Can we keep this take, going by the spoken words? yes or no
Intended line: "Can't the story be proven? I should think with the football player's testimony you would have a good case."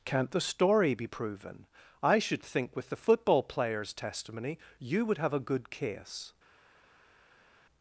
yes